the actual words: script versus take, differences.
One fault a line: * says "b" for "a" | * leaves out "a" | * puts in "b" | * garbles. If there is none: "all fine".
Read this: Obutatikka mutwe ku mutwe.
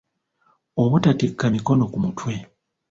* says "mikono" for "mutwe"